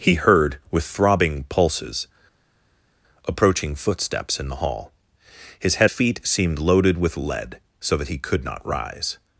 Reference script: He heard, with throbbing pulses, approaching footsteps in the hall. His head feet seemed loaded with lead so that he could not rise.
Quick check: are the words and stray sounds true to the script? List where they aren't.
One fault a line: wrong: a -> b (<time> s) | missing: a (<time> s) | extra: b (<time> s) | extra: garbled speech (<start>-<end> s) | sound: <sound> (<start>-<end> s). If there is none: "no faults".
no faults